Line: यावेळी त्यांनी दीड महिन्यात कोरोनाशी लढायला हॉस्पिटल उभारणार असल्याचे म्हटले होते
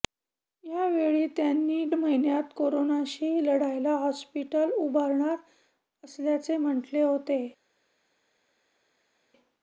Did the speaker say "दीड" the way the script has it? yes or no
no